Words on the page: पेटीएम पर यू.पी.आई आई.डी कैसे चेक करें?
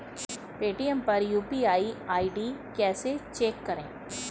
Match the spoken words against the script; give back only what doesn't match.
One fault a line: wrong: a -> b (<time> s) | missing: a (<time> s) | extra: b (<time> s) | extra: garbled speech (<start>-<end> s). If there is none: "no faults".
no faults